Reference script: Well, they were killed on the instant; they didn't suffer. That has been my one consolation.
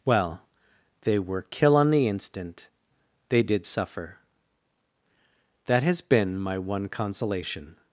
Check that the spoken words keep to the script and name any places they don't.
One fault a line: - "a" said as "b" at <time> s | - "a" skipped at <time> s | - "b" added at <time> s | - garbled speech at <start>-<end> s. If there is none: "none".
- "killed" said as "kill" at 1.4 s
- "didn't" said as "did" at 3.4 s